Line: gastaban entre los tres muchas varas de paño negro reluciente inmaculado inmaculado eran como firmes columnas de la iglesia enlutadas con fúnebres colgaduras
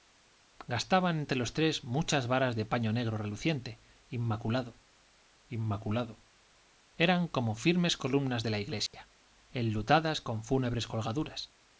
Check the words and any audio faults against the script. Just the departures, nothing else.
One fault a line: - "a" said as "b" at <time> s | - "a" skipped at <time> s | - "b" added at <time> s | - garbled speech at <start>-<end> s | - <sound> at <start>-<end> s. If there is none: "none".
- dropout at 8.9-8.9 s